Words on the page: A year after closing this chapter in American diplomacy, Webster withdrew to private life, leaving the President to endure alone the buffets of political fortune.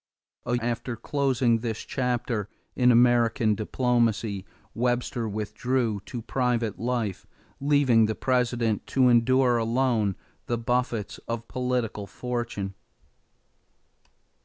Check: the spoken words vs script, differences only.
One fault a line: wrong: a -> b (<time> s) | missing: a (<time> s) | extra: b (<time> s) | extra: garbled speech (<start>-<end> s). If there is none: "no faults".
missing: year (0.6 s)